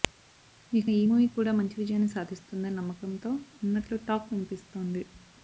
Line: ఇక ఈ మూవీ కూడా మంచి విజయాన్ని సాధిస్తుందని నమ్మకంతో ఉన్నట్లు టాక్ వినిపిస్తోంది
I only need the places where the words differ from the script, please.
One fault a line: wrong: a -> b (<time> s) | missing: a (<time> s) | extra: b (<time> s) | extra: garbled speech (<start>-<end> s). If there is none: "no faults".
no faults